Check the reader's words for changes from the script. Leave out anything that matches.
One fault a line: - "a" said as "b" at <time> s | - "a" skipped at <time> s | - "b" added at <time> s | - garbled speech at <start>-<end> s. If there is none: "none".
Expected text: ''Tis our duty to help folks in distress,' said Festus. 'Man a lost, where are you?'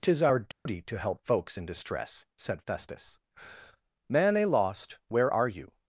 none